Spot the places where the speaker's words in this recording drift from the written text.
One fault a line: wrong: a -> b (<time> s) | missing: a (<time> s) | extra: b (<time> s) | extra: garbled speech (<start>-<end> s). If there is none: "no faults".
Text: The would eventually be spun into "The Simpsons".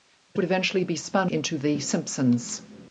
no faults